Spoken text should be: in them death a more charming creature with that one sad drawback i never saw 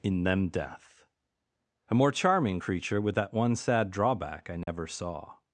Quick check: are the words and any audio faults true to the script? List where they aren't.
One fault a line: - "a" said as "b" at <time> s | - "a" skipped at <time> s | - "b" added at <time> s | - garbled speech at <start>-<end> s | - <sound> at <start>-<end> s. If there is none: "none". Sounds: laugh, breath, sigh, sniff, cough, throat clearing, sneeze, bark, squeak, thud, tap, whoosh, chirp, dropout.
- dropout at 4.6-4.7 s